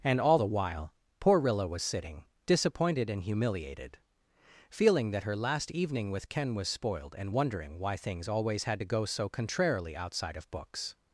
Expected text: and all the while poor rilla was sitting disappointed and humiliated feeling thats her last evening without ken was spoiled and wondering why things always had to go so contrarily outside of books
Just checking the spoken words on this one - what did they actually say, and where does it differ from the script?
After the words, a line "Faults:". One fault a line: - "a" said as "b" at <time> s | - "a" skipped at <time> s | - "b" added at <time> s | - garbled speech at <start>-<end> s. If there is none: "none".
and all the while poor rilla was sitting disappointed and humiliated feeling that her last evening with ken was spoiled and wondering why things always had to go so contrarily outside of books
Faults:
- "thats" said as "that" at 5.1 s
- "without" said as "with" at 6.1 s